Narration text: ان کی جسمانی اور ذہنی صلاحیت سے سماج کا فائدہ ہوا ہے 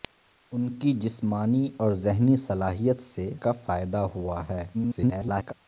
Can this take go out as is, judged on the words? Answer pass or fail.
fail